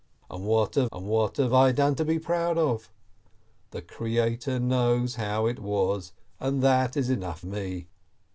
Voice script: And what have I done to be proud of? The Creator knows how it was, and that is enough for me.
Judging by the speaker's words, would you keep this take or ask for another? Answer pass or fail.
fail